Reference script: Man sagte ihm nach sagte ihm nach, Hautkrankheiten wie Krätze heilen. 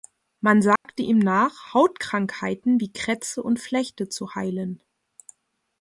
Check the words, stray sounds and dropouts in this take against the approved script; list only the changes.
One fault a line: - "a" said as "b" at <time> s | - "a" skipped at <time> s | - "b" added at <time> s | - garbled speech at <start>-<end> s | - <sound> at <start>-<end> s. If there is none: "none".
- dropout at 0.8-0.8 s
- "sagte ihm nach Hautkrankheiten wie Krätze" said as "Hautkrankheiten wie Krätze und Flechte zu" at 1.7 s